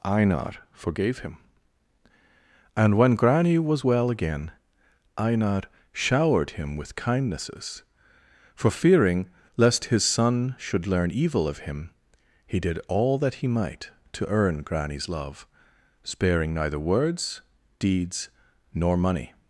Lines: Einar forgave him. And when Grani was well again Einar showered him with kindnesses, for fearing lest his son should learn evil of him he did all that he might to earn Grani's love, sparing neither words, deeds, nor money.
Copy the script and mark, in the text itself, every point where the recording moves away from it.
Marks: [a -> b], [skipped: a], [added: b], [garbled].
Einar forgave him. And when Grani was well again Einar showered him with kindnesses, for fearing lest his son should learn evil of him he did all that he might to earn Grani's love, sparing neither words, deeds, nor money.